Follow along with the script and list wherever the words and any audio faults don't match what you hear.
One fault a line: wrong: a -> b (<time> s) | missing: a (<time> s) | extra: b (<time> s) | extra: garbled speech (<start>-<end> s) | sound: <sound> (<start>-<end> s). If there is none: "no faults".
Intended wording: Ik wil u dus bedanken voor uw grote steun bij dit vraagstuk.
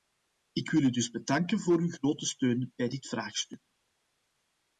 no faults